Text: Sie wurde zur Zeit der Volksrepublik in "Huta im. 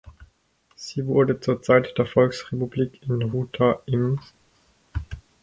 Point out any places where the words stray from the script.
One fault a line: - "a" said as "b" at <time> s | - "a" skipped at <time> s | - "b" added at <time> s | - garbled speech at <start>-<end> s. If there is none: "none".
none